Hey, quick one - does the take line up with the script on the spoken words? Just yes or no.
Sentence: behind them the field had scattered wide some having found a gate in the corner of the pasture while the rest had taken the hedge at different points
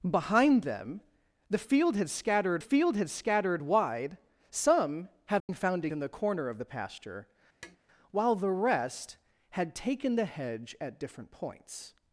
no